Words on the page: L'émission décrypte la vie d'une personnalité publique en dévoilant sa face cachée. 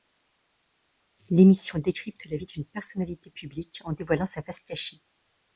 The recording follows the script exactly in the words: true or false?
true